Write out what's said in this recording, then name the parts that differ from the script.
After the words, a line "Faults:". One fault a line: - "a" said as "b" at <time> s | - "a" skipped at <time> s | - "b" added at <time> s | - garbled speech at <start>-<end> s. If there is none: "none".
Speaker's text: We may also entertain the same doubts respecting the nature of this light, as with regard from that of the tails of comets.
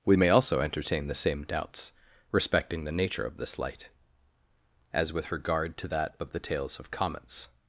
We may also entertain the same doubts respecting the nature of this light, as with regard to that of the tails of comets.
Faults:
- "from" said as "to" at 5.8 s